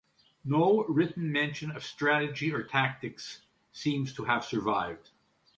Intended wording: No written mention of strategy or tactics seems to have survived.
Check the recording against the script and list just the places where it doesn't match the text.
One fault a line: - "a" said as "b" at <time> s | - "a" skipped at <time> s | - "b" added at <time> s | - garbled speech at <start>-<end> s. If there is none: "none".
none